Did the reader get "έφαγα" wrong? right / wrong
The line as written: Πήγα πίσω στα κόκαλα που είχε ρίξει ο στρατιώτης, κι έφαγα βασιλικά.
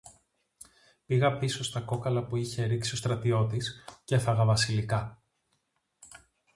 right